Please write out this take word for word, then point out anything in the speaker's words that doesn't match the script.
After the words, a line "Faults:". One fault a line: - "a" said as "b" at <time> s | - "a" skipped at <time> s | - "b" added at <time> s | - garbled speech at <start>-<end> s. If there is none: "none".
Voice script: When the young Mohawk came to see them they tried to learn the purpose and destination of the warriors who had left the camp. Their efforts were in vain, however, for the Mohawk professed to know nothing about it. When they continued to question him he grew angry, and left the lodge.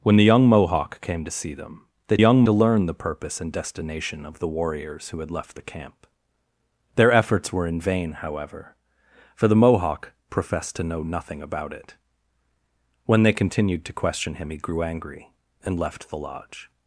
When the young Mohawk came to see them they young to learn the purpose and destination of the warriors who had left the camp. Their efforts were in vain, however, for the Mohawk professed to know nothing about it. When they continued to question him he grew angry, and left the lodge.
Faults:
- "tried" said as "young" at 2.2 s